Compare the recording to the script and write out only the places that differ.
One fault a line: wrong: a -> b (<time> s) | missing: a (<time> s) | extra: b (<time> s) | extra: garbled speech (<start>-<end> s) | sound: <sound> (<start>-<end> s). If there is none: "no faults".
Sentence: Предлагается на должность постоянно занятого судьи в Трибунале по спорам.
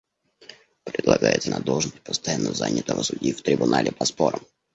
no faults